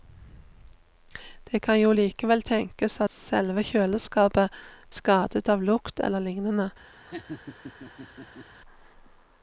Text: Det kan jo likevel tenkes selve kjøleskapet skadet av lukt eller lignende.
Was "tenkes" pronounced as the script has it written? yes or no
yes